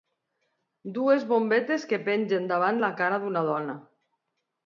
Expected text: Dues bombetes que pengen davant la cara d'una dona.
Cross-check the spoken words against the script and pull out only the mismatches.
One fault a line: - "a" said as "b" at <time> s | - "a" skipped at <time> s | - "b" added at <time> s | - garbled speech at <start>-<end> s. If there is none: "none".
none